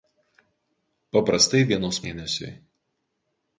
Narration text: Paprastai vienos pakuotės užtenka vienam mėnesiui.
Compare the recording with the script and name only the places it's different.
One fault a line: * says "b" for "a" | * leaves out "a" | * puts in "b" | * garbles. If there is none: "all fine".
* leaves out "pakuotės užtenka vienam"